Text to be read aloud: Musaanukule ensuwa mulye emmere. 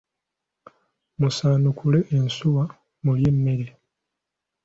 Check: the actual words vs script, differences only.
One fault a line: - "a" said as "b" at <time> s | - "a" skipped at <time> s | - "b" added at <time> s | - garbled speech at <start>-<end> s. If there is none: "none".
none